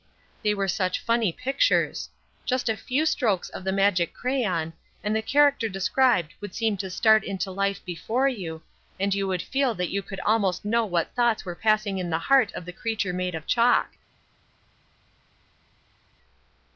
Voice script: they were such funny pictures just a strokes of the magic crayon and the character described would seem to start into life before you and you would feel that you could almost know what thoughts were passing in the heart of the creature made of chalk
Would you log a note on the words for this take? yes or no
yes